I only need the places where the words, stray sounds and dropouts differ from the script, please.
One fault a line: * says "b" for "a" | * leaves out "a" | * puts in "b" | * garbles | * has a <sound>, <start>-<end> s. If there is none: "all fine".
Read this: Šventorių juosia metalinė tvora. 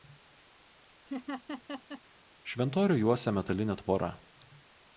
* has a laugh, 1.1-2.0 s